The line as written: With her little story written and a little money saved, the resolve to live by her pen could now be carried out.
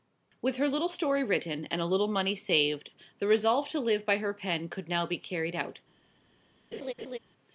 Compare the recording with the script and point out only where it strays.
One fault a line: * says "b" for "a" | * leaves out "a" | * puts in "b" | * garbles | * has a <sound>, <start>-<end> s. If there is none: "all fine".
* has a laugh, 6.7-7.2 s